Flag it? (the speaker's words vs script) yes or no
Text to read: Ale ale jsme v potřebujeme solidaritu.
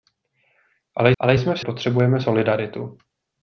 no